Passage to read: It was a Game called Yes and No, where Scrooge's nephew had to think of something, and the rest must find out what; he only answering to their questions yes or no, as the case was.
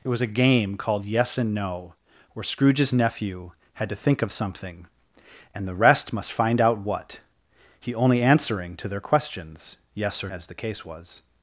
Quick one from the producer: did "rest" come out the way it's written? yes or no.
yes